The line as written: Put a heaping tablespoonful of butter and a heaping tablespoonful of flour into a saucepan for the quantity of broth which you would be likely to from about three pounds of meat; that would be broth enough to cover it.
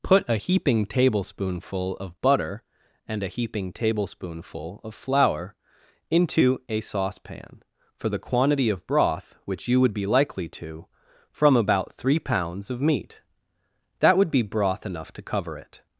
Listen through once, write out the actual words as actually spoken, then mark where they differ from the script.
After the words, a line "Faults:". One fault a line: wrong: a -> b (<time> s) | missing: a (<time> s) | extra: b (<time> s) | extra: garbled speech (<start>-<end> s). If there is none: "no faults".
Put a heaping tablespoonful of butter and a heaping tablespoonful of flour into a saucepan for the quantity of broth which you would be likely to from about three pounds of meat; that would be broth enough to cover it.
Faults:
no faults